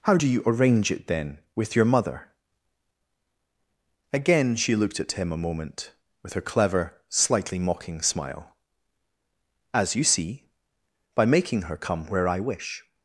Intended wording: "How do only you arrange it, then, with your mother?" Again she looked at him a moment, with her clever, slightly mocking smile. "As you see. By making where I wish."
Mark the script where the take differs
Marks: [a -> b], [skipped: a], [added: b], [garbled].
"How do [skipped: only] you arrange it, then, with your mother?" Again she looked at him a moment, with her clever, slightly mocking smile. "As you see. By making [added: her come] where I wish."